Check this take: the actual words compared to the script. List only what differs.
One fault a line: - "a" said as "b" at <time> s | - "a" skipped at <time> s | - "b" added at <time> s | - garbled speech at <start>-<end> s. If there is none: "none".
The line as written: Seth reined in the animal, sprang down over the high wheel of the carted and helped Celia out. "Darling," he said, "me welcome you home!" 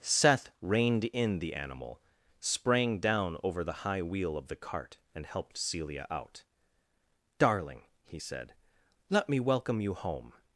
- "carted" said as "cart" at 4.6 s
- "let" added at 9.1 s